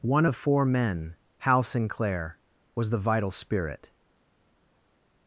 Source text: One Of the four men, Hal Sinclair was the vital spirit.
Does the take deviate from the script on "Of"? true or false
true